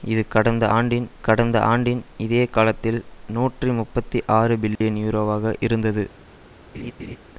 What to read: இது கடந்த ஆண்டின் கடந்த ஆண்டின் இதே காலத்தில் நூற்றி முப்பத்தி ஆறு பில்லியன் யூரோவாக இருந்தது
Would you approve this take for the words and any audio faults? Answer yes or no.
no